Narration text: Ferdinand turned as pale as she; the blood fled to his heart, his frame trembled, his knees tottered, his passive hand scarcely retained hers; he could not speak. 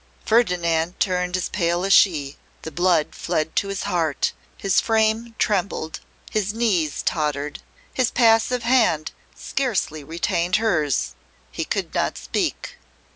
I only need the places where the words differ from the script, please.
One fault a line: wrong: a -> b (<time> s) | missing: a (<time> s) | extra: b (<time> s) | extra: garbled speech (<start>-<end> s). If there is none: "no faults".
no faults